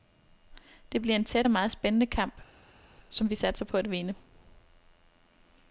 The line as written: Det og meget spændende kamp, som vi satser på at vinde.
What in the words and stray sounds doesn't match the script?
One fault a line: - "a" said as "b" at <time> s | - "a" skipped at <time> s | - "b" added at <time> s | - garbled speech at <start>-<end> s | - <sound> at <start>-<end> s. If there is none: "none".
- "bliver en tæt" added at 1.0 s